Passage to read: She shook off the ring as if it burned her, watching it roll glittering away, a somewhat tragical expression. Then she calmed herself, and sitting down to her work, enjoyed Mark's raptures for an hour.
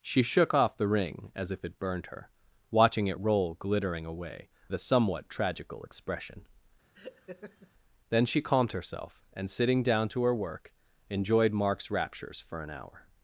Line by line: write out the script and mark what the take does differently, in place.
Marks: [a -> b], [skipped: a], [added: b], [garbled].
She shook off the ring as if it burned her, watching it roll glittering away, a somewhat tragical expression. Then she calmed herself, and sitting down to her work, enjoyed Mark's raptures for an hour.